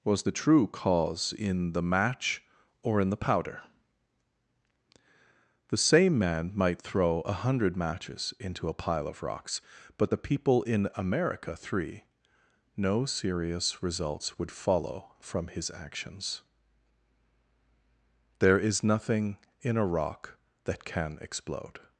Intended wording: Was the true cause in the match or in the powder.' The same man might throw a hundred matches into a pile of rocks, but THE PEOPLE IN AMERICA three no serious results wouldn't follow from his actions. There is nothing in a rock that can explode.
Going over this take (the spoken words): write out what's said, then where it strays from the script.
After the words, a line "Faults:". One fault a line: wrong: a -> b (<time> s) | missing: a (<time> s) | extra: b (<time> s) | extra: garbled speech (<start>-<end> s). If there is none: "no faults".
Was the true cause in the match or in the powder.' The same man might throw a hundred matches into a pile of rocks, but THE PEOPLE IN AMERICA three no serious results would follow from his actions. There is nothing in a rock that can explode.
Faults:
wrong: wouldn't -> would (14.4 s)